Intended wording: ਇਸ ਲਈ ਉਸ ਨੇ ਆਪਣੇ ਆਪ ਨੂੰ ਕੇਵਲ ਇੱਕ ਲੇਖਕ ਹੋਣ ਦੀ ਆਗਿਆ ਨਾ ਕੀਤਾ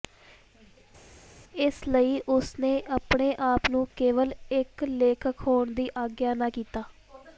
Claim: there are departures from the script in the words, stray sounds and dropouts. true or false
false